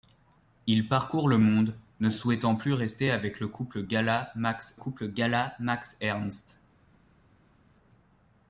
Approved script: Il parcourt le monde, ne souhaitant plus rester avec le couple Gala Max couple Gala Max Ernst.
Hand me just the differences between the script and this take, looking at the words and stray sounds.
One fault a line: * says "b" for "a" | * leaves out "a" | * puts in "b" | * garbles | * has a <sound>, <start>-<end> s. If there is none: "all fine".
all fine